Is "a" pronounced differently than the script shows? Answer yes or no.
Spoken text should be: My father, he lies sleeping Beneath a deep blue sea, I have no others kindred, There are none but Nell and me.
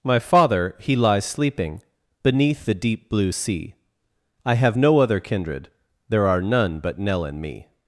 yes